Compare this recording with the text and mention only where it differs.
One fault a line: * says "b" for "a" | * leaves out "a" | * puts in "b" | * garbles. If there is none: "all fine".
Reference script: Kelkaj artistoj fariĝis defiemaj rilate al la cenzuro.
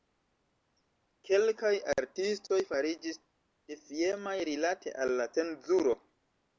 all fine